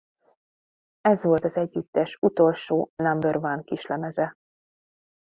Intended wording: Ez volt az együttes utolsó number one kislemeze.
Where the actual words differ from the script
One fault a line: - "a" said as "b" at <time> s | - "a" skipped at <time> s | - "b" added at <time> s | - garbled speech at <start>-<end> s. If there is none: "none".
none